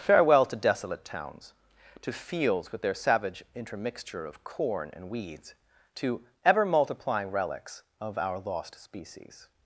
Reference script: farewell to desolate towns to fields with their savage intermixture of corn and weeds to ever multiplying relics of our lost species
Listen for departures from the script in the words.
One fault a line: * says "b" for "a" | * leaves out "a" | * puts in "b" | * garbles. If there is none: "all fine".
all fine